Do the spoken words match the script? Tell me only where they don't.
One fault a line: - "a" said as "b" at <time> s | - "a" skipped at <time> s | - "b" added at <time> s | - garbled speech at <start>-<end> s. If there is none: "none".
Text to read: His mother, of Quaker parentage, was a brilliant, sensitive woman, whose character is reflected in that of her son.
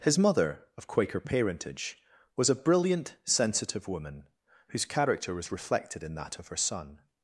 - "is" said as "was" at 5.3 s